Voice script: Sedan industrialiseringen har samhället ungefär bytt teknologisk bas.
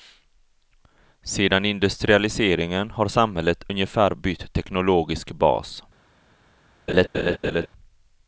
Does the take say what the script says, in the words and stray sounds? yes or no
no